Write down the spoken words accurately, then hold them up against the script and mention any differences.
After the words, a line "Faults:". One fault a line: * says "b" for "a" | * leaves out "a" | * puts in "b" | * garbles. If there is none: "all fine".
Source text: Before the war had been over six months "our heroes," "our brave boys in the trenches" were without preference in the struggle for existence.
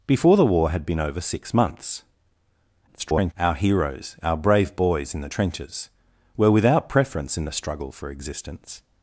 Before the war had been over six months [garbled] "our heroes," "our brave boys in the trenches" were without preference in the struggle for existence.
Faults:
* garbles